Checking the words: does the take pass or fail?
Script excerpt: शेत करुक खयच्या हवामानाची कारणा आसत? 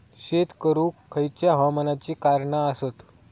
pass